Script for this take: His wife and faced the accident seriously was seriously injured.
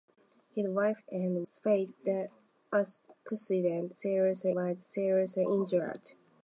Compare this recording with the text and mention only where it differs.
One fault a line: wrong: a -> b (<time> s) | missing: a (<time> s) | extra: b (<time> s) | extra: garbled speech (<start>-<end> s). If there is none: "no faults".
no faults